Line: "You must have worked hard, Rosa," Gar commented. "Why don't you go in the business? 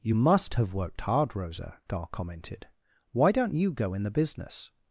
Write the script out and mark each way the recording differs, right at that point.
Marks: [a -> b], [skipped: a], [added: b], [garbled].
"You must have worked hard, Rosa," Gar commented. "Why don't you go in the business?